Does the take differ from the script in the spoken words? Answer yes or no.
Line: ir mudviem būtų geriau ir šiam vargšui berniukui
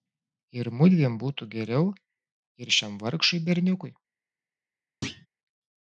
no